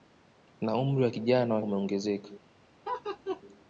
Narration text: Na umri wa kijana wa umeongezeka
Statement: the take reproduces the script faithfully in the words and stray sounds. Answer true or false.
false